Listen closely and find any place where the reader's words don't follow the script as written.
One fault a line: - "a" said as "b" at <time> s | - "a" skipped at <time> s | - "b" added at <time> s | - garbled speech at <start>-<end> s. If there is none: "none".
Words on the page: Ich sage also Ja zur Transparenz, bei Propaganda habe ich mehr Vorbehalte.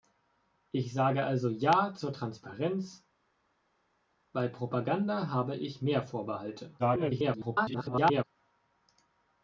- garbled speech at 6.8-8.2 s